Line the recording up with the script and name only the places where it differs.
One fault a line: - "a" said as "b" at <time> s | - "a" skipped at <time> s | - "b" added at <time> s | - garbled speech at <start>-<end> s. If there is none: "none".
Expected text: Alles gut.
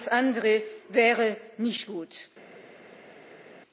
- "andere wäre nicht" added at 0.1 s